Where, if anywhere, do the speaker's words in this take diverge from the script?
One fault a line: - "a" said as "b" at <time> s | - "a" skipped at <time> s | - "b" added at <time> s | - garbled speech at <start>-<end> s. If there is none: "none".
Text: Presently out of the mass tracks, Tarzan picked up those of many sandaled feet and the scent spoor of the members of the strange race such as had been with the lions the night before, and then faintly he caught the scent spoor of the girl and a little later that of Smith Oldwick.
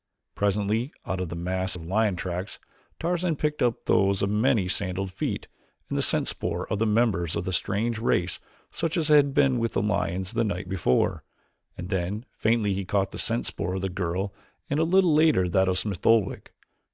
- "of lion" added at 1.7 s